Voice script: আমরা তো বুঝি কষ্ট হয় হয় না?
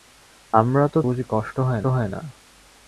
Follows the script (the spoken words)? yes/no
yes